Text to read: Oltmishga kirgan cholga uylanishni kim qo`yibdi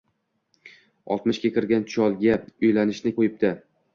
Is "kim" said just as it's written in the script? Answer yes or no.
no